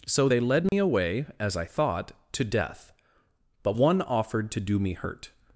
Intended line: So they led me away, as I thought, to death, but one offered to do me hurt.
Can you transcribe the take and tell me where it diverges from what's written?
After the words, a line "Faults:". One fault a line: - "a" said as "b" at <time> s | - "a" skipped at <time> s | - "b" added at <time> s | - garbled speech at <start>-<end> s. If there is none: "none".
So they led me away, as I thought, to death, but one offered to do me hurt.
Faults:
none